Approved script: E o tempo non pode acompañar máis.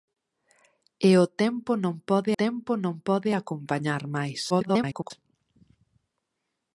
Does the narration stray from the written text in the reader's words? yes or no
yes